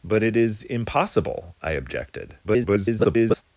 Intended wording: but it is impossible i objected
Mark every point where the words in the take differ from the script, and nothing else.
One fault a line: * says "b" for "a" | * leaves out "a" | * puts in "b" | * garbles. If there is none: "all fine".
* garbles